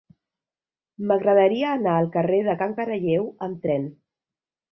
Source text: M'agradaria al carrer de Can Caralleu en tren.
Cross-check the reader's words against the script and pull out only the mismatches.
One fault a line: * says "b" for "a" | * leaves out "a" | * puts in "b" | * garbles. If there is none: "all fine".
* puts in "anar"
* says "amb" for "en"